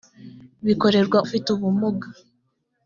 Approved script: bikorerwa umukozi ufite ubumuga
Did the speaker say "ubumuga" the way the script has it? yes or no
yes